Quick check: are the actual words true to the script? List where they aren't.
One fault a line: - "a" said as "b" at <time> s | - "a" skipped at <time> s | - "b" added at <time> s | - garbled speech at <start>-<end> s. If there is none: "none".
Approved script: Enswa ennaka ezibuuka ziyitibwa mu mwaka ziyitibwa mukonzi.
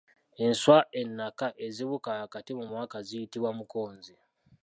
- "ziyitibwa" said as "wakati" at 2.2 s